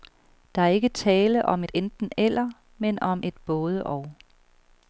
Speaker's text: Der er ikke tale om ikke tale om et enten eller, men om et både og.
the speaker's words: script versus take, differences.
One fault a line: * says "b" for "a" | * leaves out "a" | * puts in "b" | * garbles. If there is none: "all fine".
* leaves out "ikke tale om"